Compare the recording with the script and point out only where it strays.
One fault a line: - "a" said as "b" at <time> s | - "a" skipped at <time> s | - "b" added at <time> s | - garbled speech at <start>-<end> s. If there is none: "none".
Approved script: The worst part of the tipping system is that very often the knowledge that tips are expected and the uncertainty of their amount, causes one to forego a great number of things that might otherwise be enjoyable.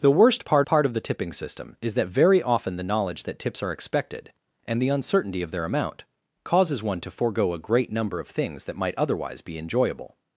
- "part" added at 0.7 s